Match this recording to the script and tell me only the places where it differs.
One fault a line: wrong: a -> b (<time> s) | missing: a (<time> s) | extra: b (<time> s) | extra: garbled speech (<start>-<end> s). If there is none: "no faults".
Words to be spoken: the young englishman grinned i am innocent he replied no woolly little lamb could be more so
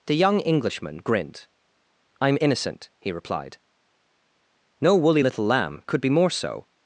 no faults